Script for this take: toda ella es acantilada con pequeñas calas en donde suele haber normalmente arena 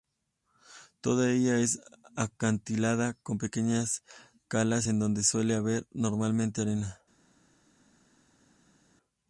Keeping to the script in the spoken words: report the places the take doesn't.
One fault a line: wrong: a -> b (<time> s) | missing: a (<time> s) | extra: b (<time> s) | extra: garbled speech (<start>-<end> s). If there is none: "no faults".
no faults